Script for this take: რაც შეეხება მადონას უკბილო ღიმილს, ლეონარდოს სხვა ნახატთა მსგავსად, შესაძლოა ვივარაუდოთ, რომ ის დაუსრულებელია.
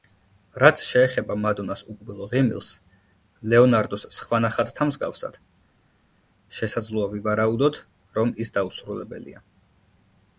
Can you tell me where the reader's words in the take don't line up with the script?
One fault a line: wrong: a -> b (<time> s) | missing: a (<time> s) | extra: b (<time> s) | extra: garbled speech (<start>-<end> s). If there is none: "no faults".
no faults